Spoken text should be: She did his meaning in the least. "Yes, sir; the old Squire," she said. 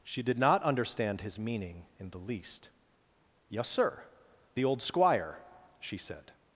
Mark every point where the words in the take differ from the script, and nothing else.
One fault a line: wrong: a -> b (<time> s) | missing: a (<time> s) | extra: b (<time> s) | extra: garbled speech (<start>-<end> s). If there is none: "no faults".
extra: not understand (0.4 s)